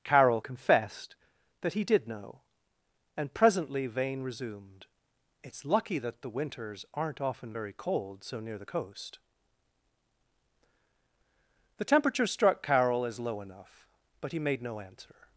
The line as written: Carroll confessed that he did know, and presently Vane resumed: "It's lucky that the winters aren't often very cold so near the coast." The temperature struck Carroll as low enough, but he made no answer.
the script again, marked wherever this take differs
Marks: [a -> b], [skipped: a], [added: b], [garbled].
Carroll confessed that he did know, and presently Vane resumed: "It's lucky that the winters aren't often very cold so near the coast." The temperature struck Carroll as low enough, but he made no answer.